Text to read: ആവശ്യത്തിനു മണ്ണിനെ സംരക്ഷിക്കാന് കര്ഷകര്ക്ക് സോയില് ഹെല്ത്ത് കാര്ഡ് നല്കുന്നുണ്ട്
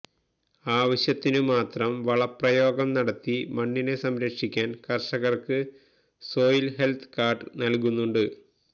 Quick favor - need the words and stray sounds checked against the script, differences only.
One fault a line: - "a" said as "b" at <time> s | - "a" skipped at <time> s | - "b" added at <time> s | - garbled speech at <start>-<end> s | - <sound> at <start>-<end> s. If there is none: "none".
- "മാത്രം വളപ്രയോഗം നടത്തി" added at 1.5 s